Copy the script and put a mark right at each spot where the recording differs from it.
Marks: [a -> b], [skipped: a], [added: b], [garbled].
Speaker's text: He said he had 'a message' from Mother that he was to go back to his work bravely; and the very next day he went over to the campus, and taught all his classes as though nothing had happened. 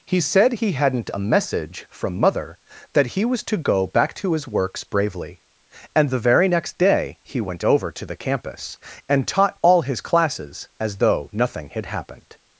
He said he [had -> hadn't] 'a message' from Mother that he was to go back to his [work -> works] bravely; and the very next day he went over to the campus, and taught all his classes as though nothing had happened.